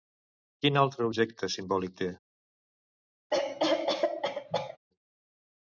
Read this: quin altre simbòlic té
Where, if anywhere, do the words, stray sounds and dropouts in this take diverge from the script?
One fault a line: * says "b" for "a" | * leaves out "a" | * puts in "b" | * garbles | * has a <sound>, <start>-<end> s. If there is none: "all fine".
* puts in "objecte"
* has a cough, 3.3-4.8 s